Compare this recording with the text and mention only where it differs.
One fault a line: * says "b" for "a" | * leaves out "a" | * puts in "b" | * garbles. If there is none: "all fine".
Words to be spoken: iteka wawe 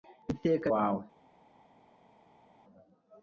all fine